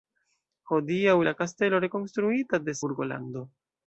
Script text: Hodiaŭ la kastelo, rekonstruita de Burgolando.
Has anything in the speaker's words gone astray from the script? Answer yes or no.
no